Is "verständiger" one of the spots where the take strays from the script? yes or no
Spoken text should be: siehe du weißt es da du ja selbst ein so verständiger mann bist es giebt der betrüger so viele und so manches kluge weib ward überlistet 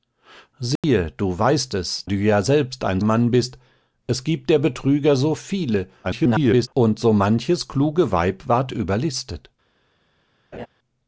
yes